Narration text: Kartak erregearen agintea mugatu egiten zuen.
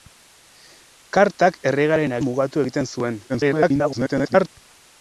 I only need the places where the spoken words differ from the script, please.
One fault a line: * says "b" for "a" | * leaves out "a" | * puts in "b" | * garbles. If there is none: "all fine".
* leaves out "agintea"
* garbles